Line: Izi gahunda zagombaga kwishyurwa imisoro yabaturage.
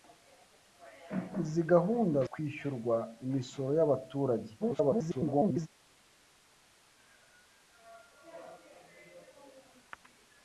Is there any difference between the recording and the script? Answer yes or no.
yes